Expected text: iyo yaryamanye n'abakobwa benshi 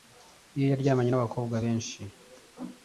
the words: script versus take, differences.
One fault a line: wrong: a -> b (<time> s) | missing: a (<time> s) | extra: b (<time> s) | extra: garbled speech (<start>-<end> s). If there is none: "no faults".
no faults